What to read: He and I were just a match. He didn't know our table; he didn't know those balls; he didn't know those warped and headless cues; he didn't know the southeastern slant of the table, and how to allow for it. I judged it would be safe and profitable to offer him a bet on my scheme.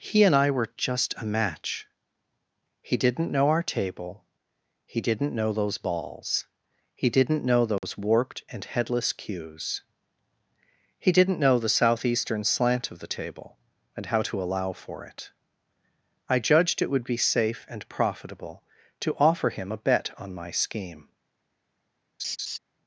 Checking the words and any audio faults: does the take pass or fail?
fail